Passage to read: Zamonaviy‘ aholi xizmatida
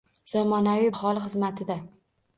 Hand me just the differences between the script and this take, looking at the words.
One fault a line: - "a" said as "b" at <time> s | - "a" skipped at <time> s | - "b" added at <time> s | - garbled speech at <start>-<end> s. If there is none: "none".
none